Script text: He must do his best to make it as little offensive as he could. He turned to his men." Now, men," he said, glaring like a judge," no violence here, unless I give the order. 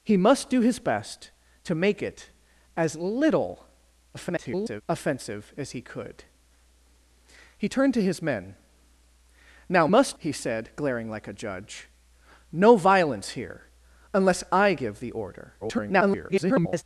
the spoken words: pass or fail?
fail